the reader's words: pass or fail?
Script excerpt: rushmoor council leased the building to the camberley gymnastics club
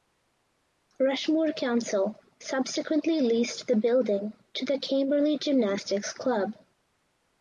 fail